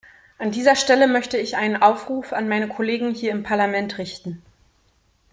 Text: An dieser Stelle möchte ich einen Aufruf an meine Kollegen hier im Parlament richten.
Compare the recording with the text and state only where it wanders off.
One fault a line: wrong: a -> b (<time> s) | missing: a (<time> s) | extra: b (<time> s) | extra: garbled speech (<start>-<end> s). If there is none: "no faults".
no faults